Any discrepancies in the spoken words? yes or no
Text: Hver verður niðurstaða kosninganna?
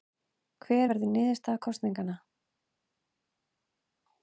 no